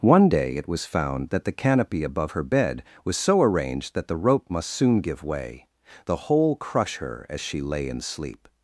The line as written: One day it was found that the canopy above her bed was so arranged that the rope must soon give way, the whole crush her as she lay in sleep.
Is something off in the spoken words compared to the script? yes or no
no